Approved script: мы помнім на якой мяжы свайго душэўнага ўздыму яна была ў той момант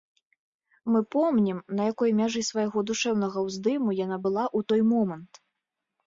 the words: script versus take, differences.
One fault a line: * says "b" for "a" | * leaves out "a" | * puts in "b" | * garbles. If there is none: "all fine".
all fine